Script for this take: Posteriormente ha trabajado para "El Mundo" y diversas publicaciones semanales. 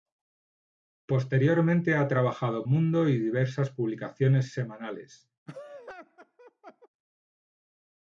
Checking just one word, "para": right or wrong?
wrong